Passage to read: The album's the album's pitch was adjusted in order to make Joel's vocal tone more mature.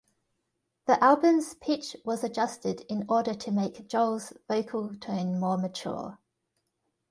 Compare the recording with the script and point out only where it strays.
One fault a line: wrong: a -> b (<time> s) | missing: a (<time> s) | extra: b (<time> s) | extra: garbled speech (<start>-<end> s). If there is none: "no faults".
missing: the album's (1.5 s)